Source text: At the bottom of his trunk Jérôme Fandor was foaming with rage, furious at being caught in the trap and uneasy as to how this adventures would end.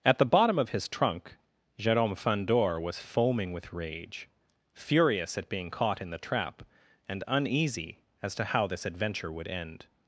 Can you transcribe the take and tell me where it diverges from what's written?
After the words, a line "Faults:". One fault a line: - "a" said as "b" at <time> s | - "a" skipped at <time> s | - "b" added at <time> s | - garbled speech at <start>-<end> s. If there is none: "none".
At the bottom of his trunk Jérôme Fandor was foaming with rage, furious at being caught in the trap and uneasy as to how this adventure would end.
Faults:
- "adventures" said as "adventure" at 8.8 s